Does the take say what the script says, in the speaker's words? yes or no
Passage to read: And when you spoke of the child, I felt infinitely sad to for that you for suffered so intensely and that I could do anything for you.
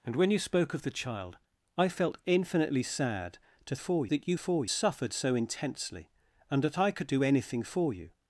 yes